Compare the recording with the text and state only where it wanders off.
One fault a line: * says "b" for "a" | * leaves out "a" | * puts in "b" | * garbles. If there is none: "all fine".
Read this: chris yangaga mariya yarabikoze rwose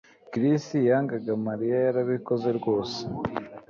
all fine